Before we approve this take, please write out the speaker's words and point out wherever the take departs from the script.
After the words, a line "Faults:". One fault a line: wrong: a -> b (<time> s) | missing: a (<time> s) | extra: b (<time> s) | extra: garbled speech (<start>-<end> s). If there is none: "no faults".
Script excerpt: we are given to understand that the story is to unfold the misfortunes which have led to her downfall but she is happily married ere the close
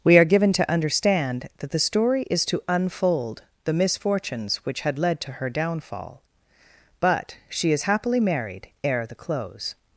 we are given to understand that the story is to unfold the misfortunes which had led to her downfall but she is happily married ere the close
Faults:
wrong: have -> had (4.8 s)